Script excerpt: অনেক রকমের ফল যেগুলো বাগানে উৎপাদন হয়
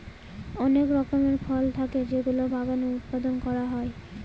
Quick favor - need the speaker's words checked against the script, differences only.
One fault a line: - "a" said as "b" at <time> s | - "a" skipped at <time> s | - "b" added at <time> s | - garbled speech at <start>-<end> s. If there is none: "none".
- "থাকে" added at 1.8 s
- "করা" added at 3.5 s